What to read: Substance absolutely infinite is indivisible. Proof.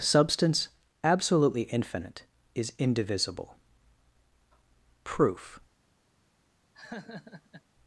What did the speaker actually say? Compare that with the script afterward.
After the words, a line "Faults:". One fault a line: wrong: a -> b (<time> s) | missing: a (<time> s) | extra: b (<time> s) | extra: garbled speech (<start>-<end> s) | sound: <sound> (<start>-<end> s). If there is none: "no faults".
Substance absolutely infinite is indivisible. Proof.
Faults:
sound: laugh (6.7-7.6 s)